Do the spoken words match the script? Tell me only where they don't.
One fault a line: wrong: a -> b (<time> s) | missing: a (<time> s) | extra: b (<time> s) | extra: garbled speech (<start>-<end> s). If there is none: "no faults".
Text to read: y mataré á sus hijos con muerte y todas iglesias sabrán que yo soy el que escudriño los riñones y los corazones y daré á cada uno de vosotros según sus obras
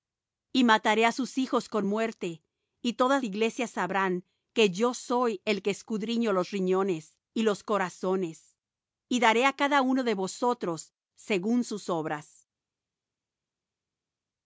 no faults